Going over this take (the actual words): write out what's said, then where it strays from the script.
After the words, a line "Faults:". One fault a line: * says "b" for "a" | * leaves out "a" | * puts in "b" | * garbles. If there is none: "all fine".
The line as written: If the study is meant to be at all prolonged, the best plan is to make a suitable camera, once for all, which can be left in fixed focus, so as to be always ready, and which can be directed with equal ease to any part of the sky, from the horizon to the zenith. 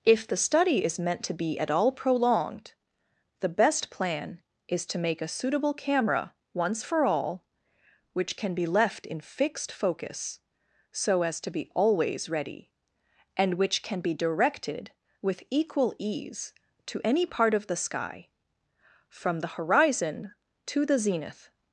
If the study is meant to be at all prolonged, the best plan is to make a suitable camera, once for all, which can be left in fixed focus, so as to be always ready, and which can be directed with equal ease to any part of the sky, from the horizon to the zenith.
Faults:
all fine